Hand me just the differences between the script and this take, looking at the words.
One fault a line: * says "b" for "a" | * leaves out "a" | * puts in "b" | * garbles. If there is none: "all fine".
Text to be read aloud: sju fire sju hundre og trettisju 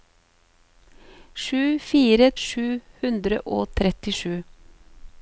all fine